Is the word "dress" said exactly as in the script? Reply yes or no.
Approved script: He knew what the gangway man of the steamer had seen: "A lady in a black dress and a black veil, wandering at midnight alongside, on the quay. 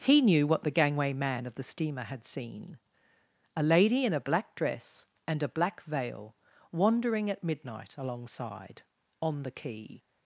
yes